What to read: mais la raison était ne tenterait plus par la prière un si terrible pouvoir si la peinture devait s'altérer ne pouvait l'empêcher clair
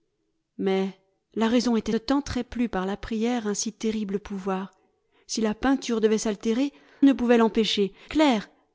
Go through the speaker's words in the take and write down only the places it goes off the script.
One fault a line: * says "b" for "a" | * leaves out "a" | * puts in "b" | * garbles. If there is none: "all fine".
all fine